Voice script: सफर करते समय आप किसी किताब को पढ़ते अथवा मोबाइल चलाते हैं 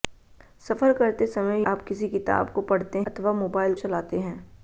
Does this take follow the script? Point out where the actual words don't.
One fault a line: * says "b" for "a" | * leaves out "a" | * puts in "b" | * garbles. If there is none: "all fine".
all fine